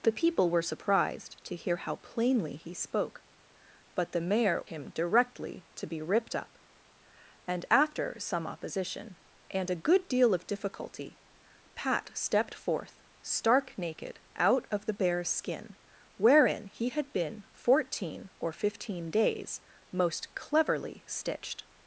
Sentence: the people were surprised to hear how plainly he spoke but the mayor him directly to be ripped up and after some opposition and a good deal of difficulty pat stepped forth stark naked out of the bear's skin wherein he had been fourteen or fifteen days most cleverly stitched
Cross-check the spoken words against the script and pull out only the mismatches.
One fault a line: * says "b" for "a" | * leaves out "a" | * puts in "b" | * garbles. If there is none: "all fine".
all fine